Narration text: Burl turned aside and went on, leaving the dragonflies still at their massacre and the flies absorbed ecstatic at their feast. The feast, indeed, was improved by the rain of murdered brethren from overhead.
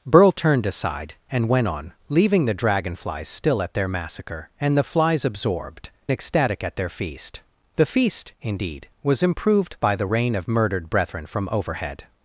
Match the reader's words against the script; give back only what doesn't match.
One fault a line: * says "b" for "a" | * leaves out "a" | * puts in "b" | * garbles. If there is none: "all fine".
all fine